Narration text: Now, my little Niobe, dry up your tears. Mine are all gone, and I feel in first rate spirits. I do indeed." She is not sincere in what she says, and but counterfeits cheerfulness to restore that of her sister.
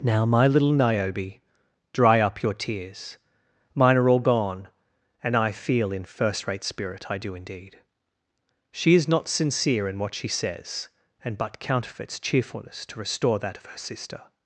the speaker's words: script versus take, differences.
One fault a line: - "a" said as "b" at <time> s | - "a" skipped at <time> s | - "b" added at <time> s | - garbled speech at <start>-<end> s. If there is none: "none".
- "spirits" said as "spirit" at 6.6 s